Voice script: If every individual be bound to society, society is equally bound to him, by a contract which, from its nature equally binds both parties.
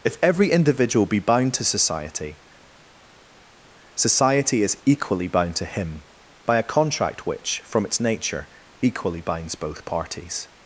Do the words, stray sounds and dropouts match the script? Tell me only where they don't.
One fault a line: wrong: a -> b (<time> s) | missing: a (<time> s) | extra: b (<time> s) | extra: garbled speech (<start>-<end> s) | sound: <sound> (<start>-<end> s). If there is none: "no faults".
no faults